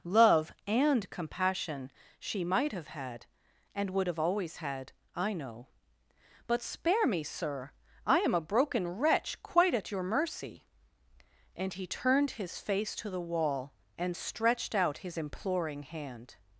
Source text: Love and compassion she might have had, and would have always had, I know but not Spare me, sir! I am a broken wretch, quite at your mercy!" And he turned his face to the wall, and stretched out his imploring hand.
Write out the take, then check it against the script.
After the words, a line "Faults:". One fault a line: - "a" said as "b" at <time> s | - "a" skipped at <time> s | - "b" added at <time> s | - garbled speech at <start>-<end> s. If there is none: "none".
Love and compassion she might have had, and would have always had, I know but Spare me, sir! I am a broken wretch, quite at your mercy!" And he turned his face to the wall, and stretched out his imploring hand.
Faults:
- "not" skipped at 6.6 s